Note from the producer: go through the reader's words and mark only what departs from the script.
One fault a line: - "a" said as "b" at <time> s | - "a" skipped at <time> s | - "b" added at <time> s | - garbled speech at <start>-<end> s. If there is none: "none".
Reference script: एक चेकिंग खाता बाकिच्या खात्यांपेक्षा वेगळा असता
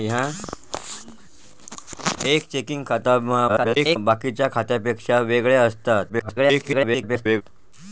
- garbled speech at 3.5-4.0 s
- garbled speech at 6.1-7.4 s